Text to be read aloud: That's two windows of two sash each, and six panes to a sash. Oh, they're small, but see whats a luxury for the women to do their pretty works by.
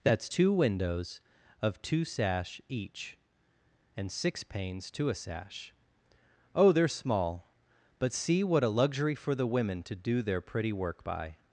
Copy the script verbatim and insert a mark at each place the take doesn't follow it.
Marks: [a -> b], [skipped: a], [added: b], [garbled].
That's two windows of two sash each, and six panes to a sash. Oh, they're small, but see [whats -> what] a luxury for the women to do their pretty [works -> work] by.